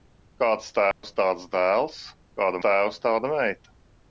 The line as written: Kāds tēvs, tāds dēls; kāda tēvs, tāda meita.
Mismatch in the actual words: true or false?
false